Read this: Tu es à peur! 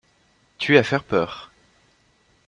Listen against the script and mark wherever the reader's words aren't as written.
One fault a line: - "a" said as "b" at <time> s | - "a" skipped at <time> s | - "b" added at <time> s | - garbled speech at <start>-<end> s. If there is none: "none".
- "faire" added at 0.8 s